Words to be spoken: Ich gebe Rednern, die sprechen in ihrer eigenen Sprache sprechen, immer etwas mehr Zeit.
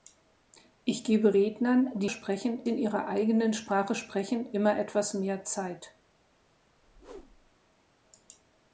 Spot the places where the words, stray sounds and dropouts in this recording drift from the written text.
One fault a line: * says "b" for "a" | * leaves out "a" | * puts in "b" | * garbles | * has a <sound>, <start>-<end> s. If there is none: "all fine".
* has a whoosh, 6.8-7.6 s